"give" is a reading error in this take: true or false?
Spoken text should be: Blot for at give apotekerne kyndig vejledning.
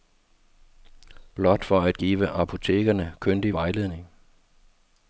false